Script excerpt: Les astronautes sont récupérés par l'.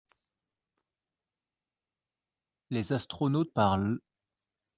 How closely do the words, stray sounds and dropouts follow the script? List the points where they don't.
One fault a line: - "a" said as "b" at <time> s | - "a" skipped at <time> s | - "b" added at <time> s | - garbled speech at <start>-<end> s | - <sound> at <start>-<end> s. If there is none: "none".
- "sont récupérés" skipped at 3.5 s